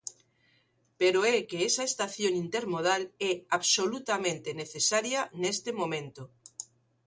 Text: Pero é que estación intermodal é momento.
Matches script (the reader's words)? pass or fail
fail